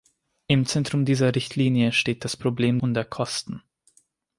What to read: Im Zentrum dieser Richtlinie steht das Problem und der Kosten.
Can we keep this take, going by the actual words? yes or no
yes